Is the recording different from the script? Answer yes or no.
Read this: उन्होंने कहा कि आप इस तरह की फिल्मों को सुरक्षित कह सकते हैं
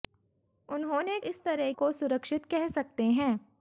yes